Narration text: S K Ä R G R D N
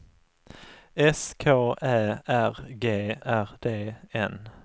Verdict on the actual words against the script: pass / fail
pass